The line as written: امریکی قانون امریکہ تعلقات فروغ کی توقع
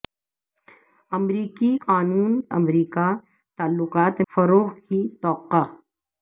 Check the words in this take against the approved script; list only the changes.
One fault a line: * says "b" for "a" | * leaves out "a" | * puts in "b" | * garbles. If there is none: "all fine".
all fine